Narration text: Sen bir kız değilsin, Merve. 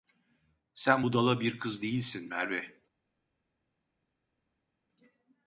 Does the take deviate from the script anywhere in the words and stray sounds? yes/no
yes